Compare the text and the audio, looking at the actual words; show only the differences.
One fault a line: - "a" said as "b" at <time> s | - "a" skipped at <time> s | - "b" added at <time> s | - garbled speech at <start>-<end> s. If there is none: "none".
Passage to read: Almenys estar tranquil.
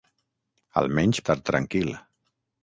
none